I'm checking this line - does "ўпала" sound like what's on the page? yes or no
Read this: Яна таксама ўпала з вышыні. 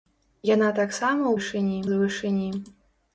no